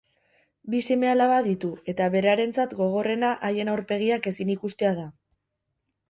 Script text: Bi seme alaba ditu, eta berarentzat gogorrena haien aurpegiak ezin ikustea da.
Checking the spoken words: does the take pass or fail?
pass